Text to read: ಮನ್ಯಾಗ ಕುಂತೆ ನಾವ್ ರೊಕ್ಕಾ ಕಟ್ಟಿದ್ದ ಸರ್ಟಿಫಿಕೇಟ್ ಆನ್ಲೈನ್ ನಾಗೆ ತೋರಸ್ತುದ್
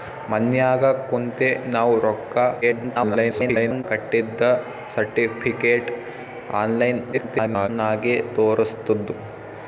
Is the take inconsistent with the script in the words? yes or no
yes